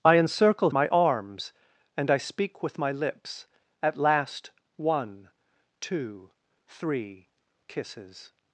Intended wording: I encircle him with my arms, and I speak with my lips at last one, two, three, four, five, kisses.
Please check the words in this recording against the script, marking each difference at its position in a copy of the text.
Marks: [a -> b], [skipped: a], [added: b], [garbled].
I encircle [skipped: him with] my arms, and I speak with my lips at last one, two, three, [skipped: four, five,] kisses.